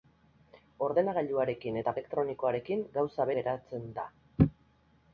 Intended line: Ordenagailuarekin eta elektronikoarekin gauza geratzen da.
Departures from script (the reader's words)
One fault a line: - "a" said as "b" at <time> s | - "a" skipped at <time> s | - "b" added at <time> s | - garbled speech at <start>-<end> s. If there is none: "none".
none